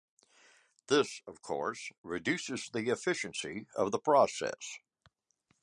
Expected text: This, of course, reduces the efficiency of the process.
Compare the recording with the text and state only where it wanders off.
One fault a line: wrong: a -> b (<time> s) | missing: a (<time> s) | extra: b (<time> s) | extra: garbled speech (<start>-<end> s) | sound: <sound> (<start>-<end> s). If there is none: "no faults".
no faults